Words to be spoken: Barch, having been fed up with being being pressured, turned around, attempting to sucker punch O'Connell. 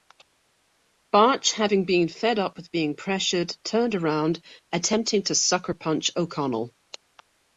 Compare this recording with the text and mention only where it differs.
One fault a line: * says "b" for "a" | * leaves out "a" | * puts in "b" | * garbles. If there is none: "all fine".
* leaves out "being"